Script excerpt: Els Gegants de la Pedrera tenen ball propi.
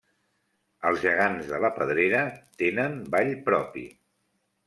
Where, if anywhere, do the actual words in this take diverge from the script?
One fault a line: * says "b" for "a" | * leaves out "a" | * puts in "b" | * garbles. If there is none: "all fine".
all fine